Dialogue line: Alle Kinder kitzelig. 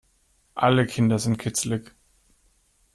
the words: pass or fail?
fail